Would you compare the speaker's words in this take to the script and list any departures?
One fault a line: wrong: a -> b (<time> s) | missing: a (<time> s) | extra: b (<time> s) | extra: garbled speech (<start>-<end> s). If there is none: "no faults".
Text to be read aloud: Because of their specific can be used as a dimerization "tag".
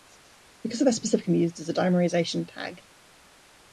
no faults